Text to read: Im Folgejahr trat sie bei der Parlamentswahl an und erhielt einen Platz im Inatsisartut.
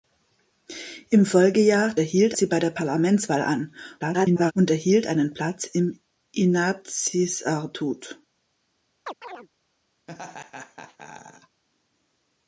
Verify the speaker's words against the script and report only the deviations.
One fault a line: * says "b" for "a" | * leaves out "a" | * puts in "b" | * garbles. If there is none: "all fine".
* says "erhielt" for "trat"
* garbles